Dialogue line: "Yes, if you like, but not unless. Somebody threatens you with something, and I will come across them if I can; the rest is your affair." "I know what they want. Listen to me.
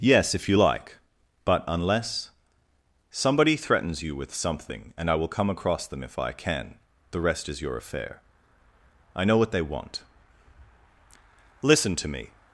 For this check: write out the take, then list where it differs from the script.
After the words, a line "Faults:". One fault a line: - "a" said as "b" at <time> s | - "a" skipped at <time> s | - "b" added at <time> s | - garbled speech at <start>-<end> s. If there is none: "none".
"Yes, if you like, but unless. Somebody threatens you with something, and I will come across them if I can; the rest is your affair." "I know what they want. Listen to me.
Faults:
- "not" skipped at 1.6 s